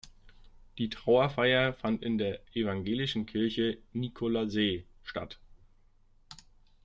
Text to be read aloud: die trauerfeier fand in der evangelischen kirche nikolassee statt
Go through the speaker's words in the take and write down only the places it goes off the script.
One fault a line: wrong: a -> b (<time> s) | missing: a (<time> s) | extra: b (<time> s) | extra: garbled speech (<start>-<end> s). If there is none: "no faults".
no faults